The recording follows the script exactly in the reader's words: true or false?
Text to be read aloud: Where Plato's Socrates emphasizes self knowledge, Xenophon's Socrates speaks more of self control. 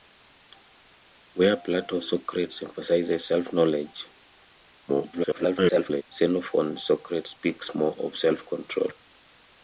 false